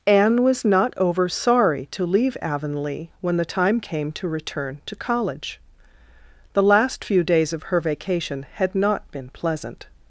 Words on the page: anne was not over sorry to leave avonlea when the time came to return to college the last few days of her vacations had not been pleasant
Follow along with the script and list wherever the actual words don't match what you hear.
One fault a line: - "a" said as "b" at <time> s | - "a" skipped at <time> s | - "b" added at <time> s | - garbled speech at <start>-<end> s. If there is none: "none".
- "vacations" said as "vacation" at 7.8 s